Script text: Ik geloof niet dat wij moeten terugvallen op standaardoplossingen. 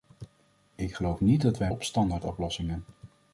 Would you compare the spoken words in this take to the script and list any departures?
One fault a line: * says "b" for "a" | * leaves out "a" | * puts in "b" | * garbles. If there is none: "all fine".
* leaves out "moeten terugvallen"